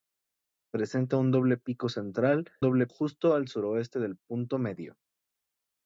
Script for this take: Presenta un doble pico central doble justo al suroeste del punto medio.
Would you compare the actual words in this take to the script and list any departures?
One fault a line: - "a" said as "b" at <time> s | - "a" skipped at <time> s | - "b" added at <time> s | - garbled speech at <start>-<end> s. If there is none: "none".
none